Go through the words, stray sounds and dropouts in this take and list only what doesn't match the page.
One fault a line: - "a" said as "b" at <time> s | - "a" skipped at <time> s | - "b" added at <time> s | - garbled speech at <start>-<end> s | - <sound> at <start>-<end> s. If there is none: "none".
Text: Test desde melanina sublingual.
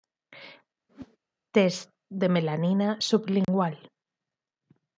- whoosh at 0.9-1.2 s
- "desde" said as "de" at 2.1 s
- dropout at 3.4-3.5 s